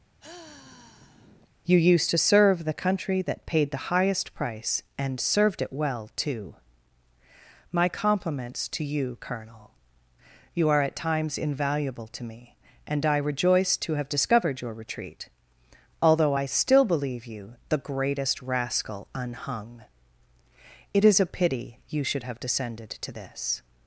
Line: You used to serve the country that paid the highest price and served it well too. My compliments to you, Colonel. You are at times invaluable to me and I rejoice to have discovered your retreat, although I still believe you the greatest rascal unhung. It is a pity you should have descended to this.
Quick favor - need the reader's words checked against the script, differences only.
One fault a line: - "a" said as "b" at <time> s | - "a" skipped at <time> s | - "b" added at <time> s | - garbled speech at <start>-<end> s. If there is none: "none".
none